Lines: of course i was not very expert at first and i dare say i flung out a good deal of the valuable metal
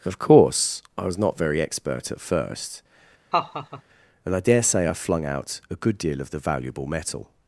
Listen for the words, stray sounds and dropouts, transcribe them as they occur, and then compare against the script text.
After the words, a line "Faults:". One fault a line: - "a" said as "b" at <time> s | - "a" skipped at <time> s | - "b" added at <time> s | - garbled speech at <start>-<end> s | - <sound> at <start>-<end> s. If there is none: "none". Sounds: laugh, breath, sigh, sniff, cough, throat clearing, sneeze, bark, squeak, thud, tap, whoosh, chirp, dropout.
of course i was not very expert at first and i dare say i flung out a good deal of the valuable metal
Faults:
- laugh at 3.3-3.8 s